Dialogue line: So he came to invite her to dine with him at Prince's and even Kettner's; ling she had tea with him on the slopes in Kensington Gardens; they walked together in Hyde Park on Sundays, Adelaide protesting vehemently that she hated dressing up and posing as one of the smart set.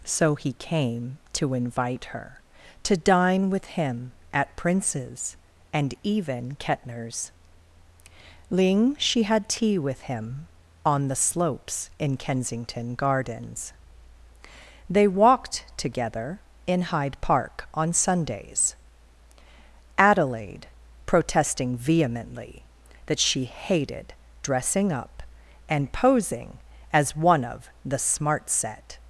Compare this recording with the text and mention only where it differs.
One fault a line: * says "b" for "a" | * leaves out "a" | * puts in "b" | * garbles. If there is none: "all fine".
all fine